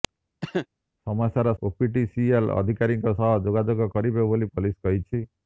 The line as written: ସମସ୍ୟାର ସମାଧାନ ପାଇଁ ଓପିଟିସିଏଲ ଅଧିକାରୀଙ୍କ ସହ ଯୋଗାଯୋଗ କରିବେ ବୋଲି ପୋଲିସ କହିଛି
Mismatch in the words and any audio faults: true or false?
true